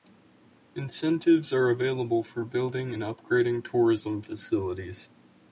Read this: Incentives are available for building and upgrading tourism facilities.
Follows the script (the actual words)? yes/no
yes